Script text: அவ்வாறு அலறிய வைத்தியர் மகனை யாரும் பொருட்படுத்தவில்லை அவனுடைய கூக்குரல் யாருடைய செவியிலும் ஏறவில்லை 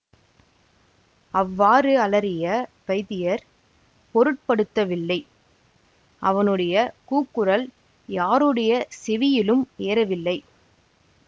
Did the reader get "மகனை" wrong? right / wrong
wrong